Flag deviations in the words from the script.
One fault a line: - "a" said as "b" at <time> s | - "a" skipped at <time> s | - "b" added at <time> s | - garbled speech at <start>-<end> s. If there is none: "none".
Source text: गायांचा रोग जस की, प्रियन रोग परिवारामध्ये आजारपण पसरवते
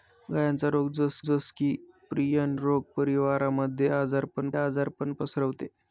- "जस" added at 1.2 s
- "आजारपण" added at 4.6 s